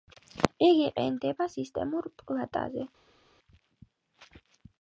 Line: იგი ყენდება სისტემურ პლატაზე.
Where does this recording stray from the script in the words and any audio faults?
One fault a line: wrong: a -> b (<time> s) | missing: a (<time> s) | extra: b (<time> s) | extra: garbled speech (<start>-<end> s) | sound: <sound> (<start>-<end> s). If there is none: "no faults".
no faults